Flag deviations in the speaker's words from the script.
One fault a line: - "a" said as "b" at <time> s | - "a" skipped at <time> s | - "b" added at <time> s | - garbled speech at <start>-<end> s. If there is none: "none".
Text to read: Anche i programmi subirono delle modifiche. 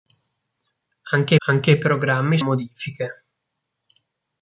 - "anche" added at 1.5 s
- "subirono delle" skipped at 2.4 s